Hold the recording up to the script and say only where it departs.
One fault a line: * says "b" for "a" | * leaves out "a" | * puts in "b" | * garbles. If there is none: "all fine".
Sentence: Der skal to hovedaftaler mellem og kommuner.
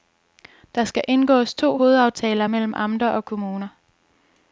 * puts in "indgås"
* puts in "amter"